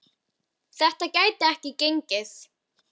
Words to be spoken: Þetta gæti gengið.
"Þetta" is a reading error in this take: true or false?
false